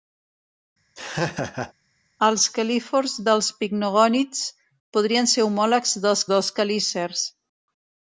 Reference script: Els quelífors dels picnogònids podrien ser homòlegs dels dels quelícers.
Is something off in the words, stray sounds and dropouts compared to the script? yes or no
yes